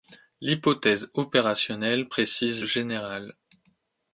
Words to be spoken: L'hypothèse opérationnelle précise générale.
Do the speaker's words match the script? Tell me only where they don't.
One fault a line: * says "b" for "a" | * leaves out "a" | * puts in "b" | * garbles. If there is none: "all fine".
all fine